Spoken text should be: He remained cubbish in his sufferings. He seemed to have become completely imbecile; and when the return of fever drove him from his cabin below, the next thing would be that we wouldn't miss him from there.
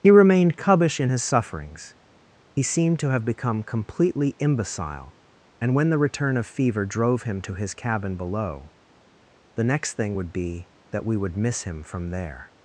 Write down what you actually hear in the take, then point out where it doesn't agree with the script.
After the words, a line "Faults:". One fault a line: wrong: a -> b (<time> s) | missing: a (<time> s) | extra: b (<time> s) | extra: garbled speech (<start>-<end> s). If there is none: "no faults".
He remained cubbish in his sufferings. He seemed to have become completely imbecile; and when the return of fever drove him to his cabin below, the next thing would be that we would miss him from there.
Faults:
wrong: from -> to (7.4 s)
wrong: wouldn't -> would (11.2 s)